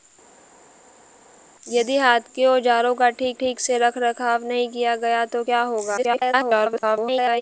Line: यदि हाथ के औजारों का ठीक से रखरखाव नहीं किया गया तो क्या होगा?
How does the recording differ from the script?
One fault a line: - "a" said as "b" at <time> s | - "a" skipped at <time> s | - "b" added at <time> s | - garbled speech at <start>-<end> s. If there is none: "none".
- "ठीक" added at 3.3 s
- garbled speech at 6.0-7.4 s